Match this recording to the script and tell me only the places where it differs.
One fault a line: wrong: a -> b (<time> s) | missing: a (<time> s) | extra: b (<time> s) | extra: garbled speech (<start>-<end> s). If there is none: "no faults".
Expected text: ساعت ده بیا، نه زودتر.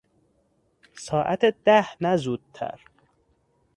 missing: بیا (1.9 s)